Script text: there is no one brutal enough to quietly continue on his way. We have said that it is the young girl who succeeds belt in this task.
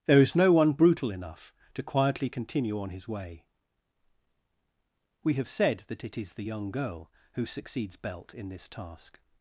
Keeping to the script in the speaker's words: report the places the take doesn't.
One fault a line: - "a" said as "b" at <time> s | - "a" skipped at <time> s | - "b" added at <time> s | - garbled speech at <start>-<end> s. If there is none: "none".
none